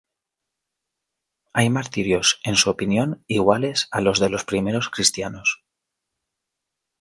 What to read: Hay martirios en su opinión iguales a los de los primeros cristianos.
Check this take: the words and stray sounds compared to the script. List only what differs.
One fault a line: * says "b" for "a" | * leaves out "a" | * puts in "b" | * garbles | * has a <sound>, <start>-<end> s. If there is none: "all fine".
all fine